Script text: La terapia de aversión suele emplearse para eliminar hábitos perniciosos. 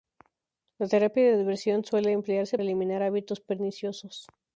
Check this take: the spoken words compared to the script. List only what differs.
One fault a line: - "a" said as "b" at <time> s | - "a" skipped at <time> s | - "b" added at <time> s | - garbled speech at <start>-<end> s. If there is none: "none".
- "para" skipped at 2.6 s